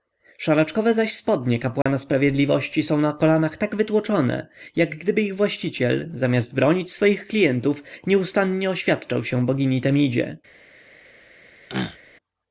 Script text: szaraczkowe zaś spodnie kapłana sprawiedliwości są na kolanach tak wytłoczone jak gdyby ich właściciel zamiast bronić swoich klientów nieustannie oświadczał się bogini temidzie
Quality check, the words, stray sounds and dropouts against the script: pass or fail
fail